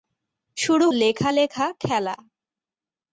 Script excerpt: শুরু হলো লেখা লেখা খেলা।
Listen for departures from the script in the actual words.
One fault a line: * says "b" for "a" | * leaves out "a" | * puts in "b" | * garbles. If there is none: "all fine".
* leaves out "হলো"